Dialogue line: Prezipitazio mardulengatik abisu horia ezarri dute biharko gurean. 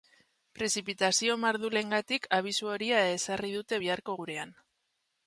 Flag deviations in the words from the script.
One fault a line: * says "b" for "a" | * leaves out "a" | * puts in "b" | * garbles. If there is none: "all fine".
all fine